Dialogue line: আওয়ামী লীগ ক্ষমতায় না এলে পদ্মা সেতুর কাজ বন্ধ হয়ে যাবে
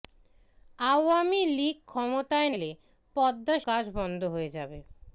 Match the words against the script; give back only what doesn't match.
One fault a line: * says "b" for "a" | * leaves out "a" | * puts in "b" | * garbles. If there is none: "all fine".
* leaves out "না"
* leaves out "সেতুর"